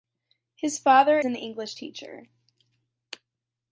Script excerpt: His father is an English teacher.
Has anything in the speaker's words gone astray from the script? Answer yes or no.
yes